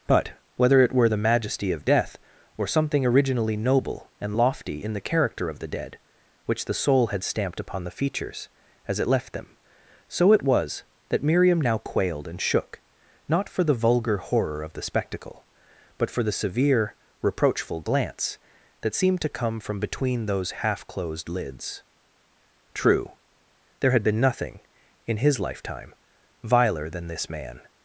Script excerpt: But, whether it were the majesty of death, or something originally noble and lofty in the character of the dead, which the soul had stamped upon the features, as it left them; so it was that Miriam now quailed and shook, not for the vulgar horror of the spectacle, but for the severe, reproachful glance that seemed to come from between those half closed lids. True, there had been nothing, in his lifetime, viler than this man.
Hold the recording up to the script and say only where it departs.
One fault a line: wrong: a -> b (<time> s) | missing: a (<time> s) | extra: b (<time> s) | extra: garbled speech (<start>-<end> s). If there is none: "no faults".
no faults